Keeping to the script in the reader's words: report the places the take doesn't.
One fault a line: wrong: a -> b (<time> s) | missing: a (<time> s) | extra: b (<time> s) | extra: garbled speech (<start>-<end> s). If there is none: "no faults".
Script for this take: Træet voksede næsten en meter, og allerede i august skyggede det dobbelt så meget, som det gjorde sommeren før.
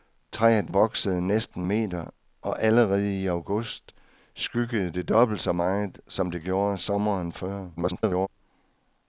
missing: en (1.7 s)
extra: garbled speech (7.8-8.3 s)